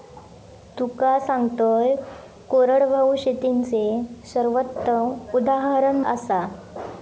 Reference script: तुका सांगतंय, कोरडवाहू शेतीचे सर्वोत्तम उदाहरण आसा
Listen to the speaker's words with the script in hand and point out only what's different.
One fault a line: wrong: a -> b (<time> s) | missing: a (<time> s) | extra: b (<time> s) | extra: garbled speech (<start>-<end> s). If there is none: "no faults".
no faults